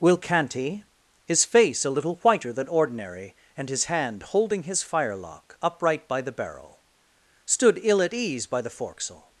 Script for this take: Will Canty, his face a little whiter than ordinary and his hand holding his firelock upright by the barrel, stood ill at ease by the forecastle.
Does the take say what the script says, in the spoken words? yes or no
yes